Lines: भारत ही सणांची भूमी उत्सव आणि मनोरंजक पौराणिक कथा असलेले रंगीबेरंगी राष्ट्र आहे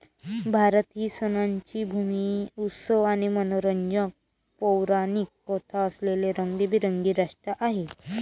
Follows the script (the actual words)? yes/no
yes